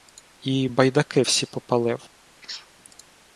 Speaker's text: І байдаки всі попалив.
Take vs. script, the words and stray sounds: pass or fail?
fail